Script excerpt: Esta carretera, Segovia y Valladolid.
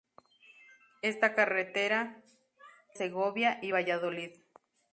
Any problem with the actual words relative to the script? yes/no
no